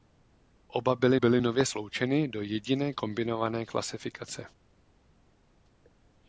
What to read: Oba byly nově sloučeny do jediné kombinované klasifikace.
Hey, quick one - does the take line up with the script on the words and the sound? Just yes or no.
no